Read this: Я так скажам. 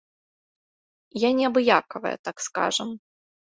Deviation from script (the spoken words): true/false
true